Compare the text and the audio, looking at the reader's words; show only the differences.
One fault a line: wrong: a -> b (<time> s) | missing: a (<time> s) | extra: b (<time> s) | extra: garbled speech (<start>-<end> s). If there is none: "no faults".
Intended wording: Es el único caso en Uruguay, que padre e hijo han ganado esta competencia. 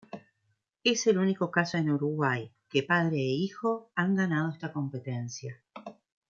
no faults